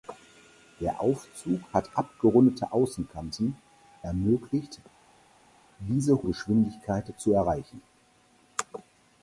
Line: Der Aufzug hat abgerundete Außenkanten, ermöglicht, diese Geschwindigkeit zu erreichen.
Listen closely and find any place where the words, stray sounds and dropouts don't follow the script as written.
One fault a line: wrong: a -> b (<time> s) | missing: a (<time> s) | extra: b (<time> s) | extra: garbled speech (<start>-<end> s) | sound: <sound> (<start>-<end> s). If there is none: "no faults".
no faults